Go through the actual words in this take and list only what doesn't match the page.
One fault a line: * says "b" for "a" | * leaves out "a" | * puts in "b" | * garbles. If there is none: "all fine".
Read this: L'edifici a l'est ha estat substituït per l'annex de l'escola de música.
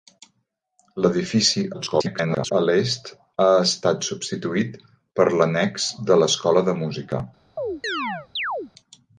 * garbles